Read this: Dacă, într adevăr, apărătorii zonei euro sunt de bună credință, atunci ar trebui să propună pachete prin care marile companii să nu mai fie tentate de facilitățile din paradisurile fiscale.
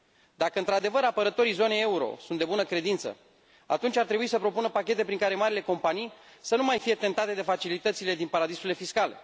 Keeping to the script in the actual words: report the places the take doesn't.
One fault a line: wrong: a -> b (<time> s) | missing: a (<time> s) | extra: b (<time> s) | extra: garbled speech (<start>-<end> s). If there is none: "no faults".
no faults